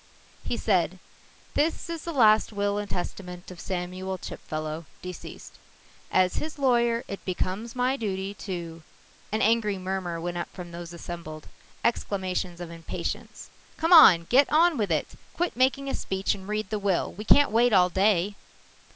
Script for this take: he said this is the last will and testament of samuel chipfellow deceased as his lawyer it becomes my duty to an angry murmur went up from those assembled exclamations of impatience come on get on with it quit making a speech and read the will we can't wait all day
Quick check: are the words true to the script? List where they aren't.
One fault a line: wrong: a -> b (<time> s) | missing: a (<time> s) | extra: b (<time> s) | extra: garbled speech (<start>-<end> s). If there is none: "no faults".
no faults